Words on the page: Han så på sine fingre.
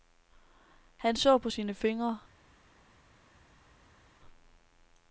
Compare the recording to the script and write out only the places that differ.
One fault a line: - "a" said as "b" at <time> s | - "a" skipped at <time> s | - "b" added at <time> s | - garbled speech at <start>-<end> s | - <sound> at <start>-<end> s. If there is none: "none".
none